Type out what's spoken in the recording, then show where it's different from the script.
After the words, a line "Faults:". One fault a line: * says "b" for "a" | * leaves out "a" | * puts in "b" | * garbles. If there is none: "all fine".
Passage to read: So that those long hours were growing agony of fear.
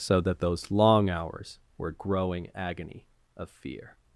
So that those long hours were growing agony of fear.
Faults:
all fine